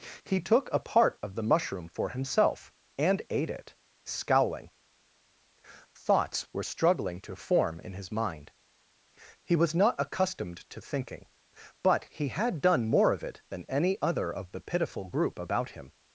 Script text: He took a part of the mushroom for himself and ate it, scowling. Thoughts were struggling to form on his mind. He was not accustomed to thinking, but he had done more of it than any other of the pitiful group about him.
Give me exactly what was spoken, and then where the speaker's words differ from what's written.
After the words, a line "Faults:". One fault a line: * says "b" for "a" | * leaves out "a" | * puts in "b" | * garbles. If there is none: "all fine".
He took a part of the mushroom for himself and ate it, scowling. Thoughts were struggling to form in his mind. He was not accustomed to thinking, but he had done more of it than any other of the pitiful group about him.
Faults:
* says "in" for "on"